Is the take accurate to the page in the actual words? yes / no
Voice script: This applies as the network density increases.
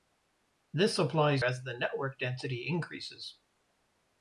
yes